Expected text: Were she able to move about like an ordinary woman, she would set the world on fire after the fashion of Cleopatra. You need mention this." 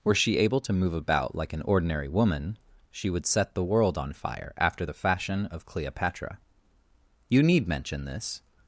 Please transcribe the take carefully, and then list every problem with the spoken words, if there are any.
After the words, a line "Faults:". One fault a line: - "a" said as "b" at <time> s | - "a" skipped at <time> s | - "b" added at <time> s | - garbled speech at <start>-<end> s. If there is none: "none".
Were she able to move about like an ordinary woman, she would set the world on fire after the fashion of Cleopatra. You need mention this."
Faults:
none